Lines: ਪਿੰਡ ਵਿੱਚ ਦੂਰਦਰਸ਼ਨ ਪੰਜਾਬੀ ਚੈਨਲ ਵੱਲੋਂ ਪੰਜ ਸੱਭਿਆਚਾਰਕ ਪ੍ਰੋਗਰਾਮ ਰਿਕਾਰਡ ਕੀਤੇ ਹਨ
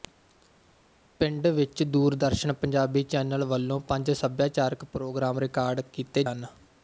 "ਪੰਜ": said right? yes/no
yes